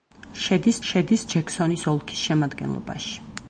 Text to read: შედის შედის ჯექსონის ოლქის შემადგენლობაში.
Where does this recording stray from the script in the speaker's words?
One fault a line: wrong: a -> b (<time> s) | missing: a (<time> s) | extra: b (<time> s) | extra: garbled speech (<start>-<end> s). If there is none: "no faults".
no faults